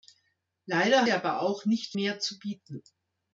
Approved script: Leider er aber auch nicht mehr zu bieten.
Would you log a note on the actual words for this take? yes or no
no